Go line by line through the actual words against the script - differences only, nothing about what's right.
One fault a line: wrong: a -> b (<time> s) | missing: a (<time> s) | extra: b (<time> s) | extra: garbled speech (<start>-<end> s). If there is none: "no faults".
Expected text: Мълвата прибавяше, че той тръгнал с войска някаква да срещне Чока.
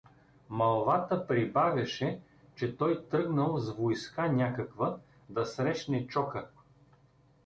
no faults